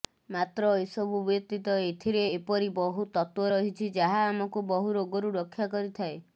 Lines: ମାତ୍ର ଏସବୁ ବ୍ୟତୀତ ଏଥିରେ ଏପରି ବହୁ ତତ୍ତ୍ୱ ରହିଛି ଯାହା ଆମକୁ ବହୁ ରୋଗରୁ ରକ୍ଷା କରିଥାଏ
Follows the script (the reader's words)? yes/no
yes